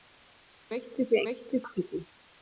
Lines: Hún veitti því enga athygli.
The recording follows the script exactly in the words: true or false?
false